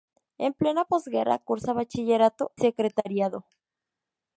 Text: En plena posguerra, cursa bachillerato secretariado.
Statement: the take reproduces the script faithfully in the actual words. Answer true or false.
true